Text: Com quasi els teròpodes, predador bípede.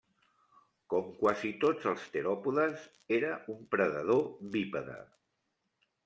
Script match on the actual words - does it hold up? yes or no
no